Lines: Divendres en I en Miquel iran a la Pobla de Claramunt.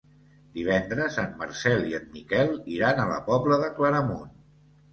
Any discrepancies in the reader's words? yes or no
yes